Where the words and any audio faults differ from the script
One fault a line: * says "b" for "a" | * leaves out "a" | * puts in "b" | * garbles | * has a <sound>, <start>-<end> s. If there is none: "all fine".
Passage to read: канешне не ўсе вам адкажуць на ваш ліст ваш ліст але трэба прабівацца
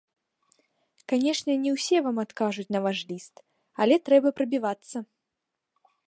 * leaves out "ваш ліст"